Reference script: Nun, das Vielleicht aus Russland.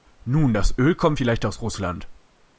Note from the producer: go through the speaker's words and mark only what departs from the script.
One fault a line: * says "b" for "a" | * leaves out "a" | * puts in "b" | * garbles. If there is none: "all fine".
* puts in "Öl kommt"